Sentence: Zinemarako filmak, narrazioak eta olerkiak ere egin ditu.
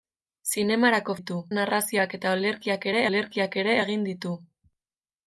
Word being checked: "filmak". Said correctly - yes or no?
no